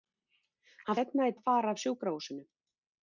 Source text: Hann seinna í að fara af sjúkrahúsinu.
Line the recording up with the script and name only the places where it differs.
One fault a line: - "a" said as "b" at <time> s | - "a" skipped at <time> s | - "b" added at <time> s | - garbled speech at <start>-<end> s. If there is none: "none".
none